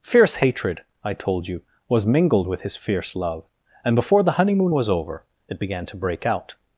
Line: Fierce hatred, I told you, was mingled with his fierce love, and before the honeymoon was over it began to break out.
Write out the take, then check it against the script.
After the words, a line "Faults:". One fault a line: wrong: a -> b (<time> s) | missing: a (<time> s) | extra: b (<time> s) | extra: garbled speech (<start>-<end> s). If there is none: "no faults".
Fierce hatred, I told you, was mingled with his fierce love, and before the honeymoon was over it began to break out.
Faults:
no faults